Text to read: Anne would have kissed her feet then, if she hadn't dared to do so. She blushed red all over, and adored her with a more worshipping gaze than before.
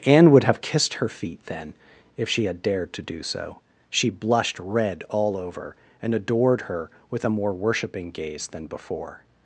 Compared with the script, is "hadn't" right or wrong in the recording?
wrong